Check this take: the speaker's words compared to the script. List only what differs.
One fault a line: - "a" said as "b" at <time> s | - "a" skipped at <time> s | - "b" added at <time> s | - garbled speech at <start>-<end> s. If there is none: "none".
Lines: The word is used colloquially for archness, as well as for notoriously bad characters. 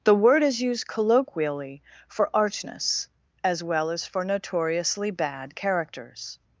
none